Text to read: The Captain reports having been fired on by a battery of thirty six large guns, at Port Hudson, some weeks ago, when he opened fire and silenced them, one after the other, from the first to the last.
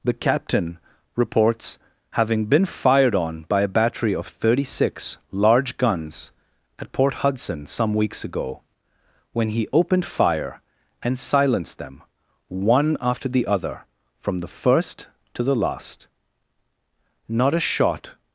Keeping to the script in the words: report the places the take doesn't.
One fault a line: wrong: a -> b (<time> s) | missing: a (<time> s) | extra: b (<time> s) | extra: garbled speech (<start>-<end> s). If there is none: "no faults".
extra: Not a shot (17.3 s)